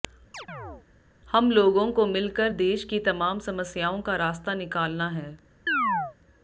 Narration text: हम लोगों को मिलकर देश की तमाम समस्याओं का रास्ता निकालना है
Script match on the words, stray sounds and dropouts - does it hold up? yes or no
no